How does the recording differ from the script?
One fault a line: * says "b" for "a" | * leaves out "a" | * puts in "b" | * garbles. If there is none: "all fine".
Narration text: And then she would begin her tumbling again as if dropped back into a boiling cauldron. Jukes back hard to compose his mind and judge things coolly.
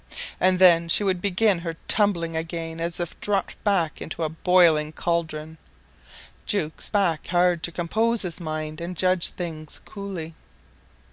all fine